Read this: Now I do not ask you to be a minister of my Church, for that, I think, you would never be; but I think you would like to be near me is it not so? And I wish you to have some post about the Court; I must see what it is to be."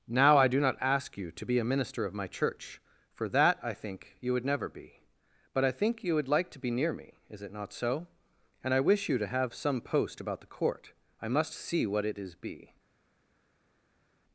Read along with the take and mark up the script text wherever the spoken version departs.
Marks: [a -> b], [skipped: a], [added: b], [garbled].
Now I do not ask you to be a minister of my Church, for that, I think, you would never be; but I think you would like to be near me is it not so? And I wish you to have some post about the Court; I must see what it is [skipped: to] be."